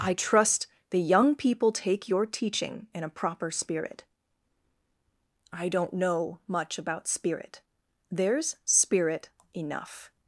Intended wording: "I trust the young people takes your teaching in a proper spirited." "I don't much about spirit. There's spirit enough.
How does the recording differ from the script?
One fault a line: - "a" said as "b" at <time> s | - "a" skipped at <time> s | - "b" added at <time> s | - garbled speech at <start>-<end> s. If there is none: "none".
- "takes" said as "take" at 1.7 s
- "spirited" said as "spirit" at 3.5 s
- "know" added at 5.9 s